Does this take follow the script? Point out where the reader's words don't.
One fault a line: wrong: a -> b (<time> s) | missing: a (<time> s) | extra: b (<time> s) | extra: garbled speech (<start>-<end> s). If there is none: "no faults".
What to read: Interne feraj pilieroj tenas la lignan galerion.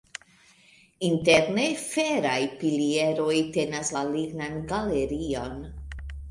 no faults